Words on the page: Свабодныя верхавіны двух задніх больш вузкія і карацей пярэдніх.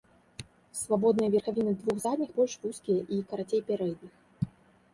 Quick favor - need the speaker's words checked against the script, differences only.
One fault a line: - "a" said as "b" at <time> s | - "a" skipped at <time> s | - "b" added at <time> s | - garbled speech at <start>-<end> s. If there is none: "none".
none